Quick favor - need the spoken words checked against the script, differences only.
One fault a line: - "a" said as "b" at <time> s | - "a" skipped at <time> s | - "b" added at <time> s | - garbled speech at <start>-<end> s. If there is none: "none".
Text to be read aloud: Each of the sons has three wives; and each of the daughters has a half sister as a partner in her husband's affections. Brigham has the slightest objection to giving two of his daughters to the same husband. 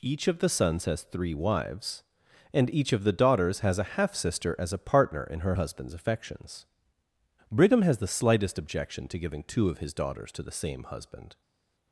none